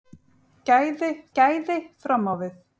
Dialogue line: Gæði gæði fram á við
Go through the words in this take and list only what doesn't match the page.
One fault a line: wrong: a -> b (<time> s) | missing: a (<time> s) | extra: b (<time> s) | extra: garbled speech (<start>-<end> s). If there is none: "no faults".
no faults